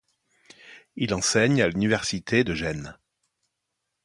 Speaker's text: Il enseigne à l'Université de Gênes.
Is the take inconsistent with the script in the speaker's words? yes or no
no